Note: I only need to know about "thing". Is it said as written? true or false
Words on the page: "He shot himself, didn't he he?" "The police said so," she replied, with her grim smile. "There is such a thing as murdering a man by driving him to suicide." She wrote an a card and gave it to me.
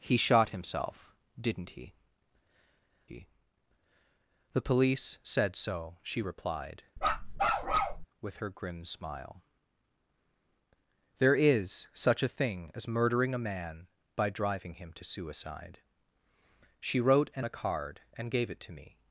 true